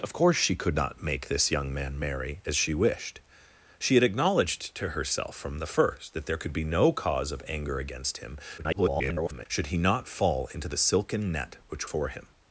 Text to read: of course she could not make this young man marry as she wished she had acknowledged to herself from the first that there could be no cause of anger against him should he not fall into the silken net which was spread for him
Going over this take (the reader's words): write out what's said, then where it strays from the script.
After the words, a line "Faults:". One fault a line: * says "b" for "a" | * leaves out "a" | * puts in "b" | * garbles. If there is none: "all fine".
of course she could not make this young man marry as she wished she had acknowledged to herself from the first that there could be no cause of anger against him [garbled] should he not fall into the silken net which for him
Faults:
* garbles
* leaves out "was spread"